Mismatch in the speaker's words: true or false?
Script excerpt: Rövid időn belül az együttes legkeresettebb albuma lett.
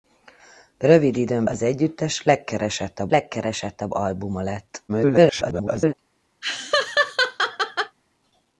true